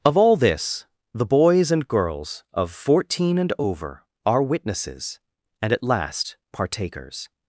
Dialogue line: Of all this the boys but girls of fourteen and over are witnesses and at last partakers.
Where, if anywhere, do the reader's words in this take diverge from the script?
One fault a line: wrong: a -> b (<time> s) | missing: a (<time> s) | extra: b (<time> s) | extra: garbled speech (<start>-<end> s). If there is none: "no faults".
wrong: but -> and (1.7 s)